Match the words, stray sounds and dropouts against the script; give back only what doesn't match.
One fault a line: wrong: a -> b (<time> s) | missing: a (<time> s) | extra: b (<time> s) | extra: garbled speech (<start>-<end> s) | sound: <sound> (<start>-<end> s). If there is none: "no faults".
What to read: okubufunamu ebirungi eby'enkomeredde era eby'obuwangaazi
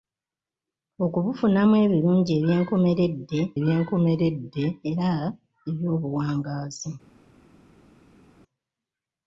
extra: eby'enkomeredde (3.6 s)